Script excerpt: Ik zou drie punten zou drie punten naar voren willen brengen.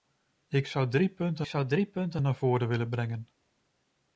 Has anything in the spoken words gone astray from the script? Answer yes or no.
no